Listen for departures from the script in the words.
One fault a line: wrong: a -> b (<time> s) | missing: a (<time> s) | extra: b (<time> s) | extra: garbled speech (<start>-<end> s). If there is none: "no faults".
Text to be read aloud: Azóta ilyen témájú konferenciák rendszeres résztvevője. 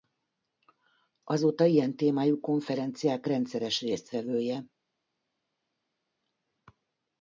no faults